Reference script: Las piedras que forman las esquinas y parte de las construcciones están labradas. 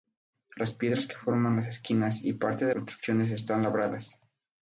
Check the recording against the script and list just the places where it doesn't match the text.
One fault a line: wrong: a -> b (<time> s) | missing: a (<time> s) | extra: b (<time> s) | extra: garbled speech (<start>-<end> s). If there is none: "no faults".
missing: las (2.7 s)